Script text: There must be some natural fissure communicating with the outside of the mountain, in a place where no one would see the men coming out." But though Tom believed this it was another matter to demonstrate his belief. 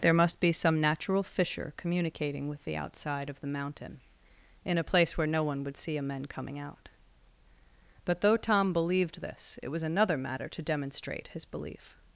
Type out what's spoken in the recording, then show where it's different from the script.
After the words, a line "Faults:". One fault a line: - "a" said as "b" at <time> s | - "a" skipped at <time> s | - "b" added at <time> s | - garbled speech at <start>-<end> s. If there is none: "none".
There must be some natural fissure communicating with the outside of the mountain, in a place where no one would see a men coming out." But though Tom believed this it was another matter to demonstrate his belief.
Faults:
- "the" said as "a" at 6.0 s